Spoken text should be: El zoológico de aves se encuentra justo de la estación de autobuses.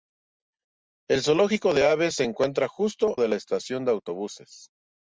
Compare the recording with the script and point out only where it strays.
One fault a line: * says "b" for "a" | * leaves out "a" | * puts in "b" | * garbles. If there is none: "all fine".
all fine